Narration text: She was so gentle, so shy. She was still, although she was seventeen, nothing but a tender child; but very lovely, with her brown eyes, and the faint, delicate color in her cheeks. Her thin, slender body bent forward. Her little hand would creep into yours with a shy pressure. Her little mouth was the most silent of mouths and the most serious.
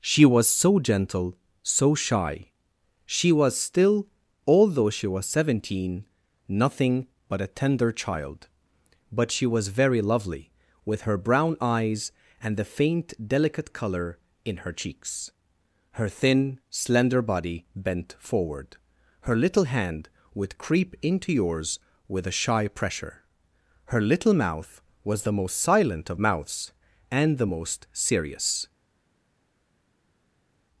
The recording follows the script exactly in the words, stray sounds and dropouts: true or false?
false